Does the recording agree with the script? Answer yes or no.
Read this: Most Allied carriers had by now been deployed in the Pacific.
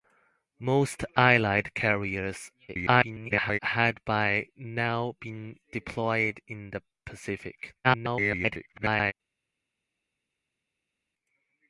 no